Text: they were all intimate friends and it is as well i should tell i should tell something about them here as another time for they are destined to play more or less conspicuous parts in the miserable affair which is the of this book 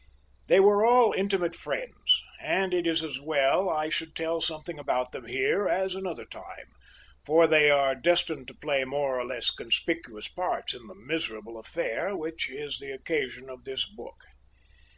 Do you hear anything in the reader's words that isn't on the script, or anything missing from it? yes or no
yes